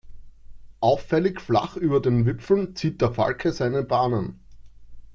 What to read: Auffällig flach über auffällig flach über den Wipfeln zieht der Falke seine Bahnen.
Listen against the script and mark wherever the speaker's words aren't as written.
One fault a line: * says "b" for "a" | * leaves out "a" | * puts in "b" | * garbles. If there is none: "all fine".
* leaves out "auffällig flach über"